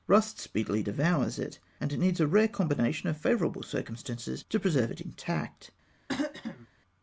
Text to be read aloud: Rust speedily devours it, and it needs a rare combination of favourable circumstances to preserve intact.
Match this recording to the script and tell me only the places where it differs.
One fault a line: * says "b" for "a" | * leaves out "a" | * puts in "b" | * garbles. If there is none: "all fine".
* puts in "it"